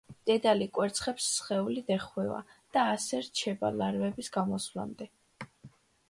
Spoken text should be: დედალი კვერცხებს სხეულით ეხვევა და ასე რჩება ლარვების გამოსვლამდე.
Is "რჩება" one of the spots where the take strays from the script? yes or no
no